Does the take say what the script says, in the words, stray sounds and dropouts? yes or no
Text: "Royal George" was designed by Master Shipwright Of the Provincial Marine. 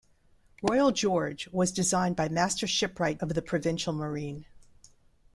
yes